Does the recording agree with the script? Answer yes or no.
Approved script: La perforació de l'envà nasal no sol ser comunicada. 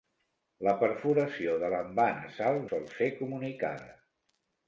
no